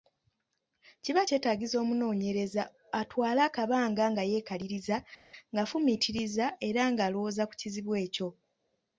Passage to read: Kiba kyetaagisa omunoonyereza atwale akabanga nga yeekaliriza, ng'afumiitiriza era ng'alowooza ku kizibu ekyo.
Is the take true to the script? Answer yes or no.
yes